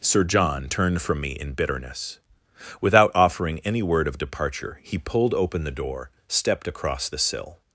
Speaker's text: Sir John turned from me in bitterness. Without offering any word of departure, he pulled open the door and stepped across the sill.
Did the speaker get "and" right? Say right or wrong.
wrong